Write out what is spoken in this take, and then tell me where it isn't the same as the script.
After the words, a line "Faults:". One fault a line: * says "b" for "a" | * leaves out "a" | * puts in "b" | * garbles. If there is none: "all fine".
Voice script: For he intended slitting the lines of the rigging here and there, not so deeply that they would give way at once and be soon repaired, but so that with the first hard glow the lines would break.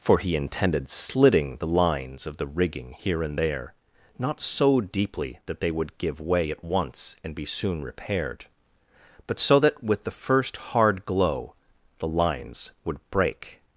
For he intended slitting the lines of the rigging here and there, not so deeply that they would give way at once and be soon repaired, but so that with the first hard glow the lines would break.
Faults:
all fine